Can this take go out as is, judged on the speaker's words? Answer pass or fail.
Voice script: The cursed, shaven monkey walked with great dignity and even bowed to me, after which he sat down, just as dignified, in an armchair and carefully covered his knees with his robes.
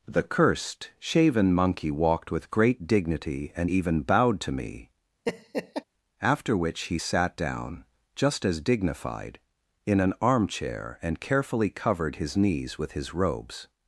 pass